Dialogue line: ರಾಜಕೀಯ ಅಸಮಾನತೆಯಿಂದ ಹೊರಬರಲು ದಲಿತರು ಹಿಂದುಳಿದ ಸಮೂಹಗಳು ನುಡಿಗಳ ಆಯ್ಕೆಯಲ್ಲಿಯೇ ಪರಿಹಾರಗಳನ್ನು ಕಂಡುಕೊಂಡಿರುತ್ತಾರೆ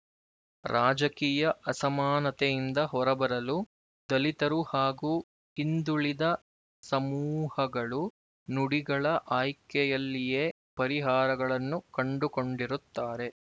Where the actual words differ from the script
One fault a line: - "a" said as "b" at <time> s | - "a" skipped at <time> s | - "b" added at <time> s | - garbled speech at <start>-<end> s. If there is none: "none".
- "ಹಾಗೂ" added at 4.7 s